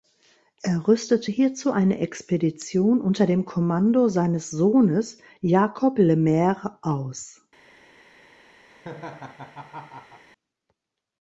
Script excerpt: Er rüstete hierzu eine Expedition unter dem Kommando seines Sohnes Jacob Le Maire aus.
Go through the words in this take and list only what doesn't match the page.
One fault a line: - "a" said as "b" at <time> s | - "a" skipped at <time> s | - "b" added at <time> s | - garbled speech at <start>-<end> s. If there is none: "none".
none